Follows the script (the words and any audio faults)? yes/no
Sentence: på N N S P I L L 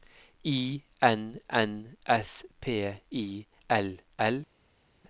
no